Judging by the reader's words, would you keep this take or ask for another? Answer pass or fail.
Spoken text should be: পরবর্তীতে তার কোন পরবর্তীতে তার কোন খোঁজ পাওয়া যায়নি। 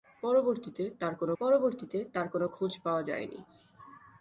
pass